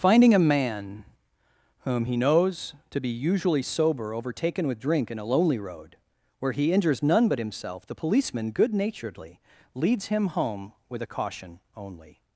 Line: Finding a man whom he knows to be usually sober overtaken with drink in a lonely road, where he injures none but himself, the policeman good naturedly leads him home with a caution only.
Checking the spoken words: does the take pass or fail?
pass